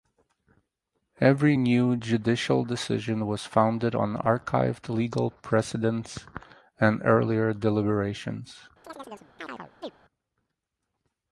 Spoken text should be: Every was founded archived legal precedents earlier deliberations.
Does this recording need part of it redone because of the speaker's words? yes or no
yes